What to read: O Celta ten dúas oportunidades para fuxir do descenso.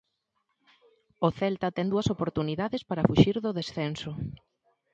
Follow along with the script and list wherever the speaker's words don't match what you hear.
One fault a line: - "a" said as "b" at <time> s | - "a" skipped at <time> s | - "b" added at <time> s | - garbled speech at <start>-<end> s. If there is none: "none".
none